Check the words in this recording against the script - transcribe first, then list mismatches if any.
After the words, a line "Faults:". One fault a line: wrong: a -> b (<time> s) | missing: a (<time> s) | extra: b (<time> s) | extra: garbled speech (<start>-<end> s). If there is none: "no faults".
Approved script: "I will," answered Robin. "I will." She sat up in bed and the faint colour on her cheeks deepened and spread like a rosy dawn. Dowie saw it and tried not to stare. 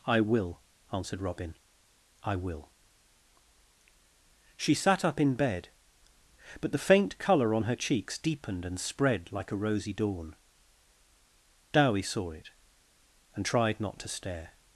"I will," answered Robin. "I will." She sat up in bed but the faint colour on her cheeks deepened and spread like a rosy dawn. Dowie saw it and tried not to stare.
Faults:
wrong: and -> but (6.6 s)